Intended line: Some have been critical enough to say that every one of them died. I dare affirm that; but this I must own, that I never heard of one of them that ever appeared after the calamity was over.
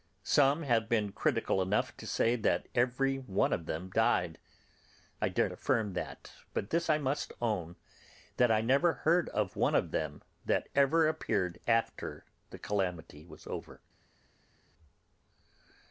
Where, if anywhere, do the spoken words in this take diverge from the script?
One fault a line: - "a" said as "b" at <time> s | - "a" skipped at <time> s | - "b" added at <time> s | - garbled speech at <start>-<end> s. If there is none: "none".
none